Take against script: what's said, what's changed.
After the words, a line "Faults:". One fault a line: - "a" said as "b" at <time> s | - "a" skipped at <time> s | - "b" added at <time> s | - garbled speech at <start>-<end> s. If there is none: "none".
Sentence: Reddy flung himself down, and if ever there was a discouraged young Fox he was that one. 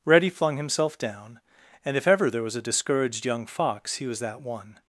Reddy flung himself down, and if ever there was a discouraged young Fox he was that one.
Faults:
none